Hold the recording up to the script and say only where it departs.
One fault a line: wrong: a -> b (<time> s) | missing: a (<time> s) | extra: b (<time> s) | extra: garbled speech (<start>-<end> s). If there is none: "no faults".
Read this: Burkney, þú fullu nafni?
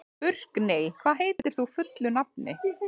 extra: hvað heitir (1.0 s)